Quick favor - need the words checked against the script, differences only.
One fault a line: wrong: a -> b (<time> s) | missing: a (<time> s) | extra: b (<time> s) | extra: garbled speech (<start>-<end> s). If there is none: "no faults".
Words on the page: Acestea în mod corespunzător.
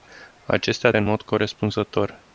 no faults